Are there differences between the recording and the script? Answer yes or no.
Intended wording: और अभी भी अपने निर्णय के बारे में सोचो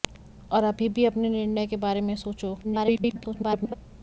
yes